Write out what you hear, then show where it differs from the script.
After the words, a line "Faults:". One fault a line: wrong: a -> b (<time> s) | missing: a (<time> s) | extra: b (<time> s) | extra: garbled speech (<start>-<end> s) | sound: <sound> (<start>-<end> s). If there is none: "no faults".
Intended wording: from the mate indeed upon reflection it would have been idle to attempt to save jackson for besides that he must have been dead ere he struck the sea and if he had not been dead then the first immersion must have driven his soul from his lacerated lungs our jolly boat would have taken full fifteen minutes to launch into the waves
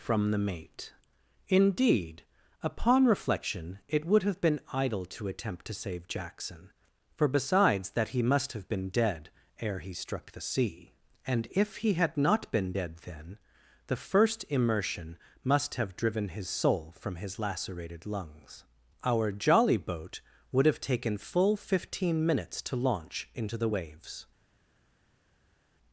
from the mate indeed upon reflection it would have been idle to attempt to save jackson for besides that he must have been dead ere he struck the sea and if he had not been dead then the first immersion must have driven his soul from his lacerated lungs our jolly boat would have taken full fifteen minutes to launch into the waves
Faults:
no faults